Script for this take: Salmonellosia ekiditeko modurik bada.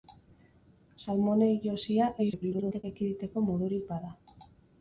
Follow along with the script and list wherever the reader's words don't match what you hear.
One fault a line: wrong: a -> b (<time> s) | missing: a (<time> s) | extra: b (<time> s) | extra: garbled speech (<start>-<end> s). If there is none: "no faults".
extra: garbled speech (2.2-2.8 s)